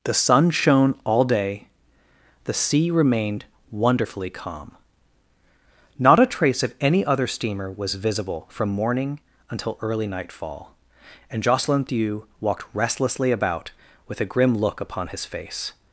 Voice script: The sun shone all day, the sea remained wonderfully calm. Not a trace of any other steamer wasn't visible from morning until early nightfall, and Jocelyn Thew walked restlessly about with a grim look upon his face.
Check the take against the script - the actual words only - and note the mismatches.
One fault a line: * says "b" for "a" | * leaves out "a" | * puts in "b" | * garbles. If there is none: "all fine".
* says "was" for "wasn't"